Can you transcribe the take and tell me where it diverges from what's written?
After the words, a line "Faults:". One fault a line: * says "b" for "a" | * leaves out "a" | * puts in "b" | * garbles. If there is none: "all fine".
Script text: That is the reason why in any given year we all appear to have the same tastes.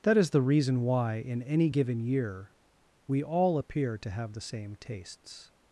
That is the reason why in any given year we all appear to have the same tastes.
Faults:
all fine